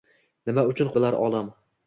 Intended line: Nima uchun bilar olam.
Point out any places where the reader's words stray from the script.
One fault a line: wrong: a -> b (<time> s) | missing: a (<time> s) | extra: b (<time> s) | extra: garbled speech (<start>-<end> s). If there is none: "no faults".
no faults